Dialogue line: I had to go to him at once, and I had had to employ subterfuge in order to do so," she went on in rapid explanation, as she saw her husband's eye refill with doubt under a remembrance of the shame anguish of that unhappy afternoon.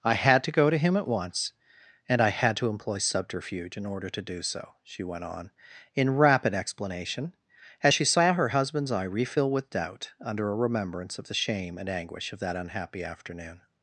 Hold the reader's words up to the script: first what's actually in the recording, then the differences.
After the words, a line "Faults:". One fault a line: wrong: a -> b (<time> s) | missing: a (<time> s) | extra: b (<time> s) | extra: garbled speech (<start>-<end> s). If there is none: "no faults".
I had to go to him at once, and I had to employ subterfuge in order to do so," she went on in rapid explanation, as she saw her husband's eye refill with doubt under a remembrance of the shame and anguish of that unhappy afternoon.
Faults:
missing: had (2.6 s)
extra: and (11.8 s)